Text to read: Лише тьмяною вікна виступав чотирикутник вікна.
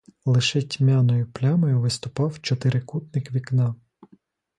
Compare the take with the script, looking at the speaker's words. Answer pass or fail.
fail